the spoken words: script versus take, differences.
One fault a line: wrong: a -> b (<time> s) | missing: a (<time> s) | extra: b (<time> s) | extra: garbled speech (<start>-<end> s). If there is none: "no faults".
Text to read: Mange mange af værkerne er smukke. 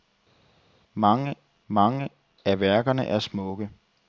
no faults